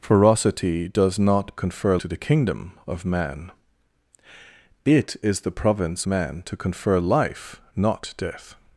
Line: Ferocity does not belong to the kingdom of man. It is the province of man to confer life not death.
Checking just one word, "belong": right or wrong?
wrong